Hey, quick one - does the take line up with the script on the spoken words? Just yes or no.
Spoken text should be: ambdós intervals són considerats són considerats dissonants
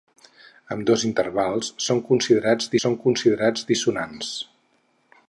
yes